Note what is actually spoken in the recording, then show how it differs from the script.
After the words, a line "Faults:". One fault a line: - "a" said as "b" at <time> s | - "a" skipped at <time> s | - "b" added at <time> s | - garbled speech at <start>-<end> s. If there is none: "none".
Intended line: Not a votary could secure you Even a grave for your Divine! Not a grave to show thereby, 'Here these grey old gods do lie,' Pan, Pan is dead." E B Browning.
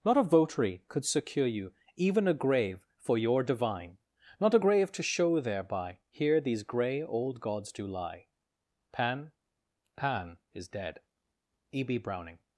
Not a votary could secure you Even a grave for your Divine! Not a grave to show thereby, 'Here these grey old gods do lie,' Pan, Pan is dead." E B Browning.
Faults:
none